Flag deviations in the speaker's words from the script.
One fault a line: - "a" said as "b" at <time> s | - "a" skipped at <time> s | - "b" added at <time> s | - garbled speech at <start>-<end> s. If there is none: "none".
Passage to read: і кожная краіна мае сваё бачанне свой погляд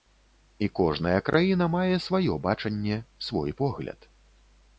none